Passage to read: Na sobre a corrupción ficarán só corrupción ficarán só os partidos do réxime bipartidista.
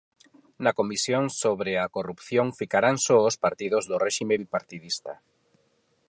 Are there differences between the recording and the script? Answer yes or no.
yes